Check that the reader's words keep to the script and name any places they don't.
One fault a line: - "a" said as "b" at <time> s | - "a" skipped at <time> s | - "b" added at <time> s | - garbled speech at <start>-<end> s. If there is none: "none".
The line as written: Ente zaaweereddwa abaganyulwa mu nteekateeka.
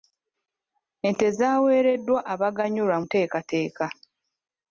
- "mu" skipped at 3.0 s